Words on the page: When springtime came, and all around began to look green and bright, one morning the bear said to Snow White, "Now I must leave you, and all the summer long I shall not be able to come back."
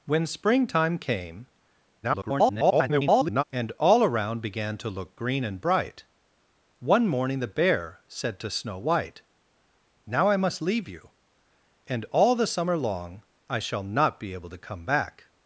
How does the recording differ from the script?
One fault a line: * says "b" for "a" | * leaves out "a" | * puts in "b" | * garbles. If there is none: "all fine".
* garbles